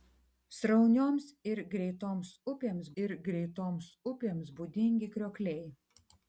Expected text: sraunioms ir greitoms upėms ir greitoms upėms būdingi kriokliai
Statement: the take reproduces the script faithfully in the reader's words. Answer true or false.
true